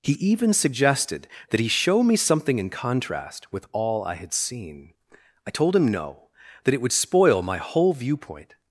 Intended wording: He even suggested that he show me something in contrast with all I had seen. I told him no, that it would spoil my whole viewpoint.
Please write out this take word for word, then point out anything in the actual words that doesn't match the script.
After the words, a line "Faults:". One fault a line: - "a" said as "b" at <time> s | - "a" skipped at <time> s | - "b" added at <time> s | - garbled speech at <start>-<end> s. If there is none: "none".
He even suggested that he show me something in contrast with all I had seen. I told him no, that it would spoil my whole viewpoint.
Faults:
none